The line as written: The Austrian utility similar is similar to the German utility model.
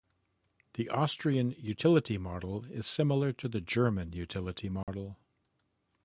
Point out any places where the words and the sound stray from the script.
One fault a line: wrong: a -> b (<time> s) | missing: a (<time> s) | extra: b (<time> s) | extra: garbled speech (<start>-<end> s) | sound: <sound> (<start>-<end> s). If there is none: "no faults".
wrong: similar -> model (2.2 s)
sound: dropout (4.8-4.9 s)